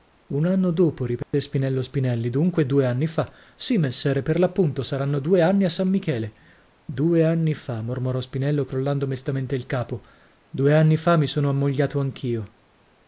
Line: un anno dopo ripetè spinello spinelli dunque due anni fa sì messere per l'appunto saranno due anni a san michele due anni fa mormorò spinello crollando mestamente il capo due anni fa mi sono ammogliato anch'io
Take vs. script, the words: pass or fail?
pass